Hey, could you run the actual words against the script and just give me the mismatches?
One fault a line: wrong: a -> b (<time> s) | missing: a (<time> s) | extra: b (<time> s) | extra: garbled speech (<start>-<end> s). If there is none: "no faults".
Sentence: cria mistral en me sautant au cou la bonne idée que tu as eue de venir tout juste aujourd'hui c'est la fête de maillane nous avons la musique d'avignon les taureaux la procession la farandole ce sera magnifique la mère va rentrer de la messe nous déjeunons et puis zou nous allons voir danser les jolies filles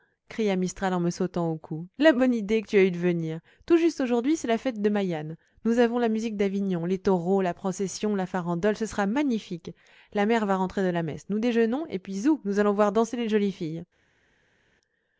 no faults